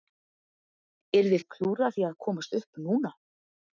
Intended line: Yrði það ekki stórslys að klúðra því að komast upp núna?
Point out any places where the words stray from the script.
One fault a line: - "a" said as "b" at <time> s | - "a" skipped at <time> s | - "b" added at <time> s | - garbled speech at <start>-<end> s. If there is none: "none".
- "það ekki stórslys" skipped at 1.4 s